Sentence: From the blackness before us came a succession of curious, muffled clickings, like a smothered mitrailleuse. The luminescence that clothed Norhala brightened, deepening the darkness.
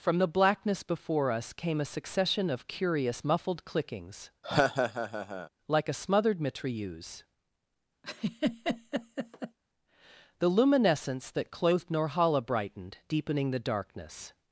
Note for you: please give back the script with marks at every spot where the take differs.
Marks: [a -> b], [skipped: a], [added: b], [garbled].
From the blackness before us came a succession of curious, muffled clickings, like a smothered mitrailleuse. The luminescence that clothed Norhala brightened, deepening the darkness.